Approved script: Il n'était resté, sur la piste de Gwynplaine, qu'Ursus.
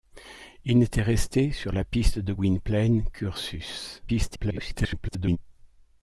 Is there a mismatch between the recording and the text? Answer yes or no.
yes